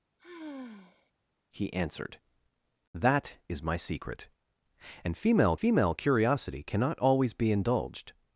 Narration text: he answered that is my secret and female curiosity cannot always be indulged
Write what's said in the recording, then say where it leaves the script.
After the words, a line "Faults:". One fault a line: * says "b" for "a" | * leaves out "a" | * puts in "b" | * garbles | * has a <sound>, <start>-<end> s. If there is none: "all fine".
he answered that is my secret and female female curiosity cannot always be indulged
Faults:
* has a sigh, 0.2-1.1 s
* puts in "female"